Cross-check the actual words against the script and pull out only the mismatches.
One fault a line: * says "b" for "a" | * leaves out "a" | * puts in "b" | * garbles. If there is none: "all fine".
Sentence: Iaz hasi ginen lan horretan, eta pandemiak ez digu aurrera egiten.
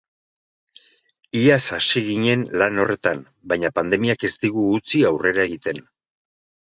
* says "baina" for "eta"
* puts in "utzi"